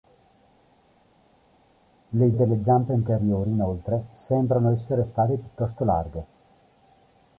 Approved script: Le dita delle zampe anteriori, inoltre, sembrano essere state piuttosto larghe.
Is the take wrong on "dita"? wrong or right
wrong